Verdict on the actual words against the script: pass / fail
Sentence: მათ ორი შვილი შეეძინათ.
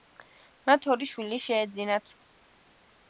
pass